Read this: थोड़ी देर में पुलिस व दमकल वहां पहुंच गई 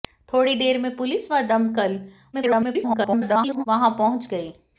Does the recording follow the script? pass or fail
fail